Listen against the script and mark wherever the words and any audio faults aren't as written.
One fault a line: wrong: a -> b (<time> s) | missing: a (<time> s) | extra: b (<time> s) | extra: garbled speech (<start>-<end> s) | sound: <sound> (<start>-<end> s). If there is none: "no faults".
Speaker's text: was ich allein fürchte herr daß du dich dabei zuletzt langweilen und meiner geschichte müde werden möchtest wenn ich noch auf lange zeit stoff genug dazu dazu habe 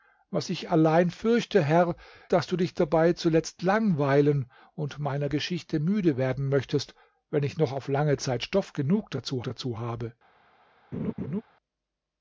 sound: laugh (10.9-11.4 s)